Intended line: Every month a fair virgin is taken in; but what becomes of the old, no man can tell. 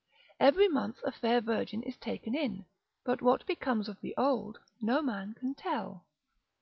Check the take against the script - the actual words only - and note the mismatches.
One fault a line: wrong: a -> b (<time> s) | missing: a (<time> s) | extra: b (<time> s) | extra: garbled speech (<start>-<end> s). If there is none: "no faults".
no faults